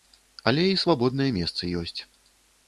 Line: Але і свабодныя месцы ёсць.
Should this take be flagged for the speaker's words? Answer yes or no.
no